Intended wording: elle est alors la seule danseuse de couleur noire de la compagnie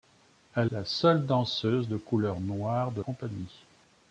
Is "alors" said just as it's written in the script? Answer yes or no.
no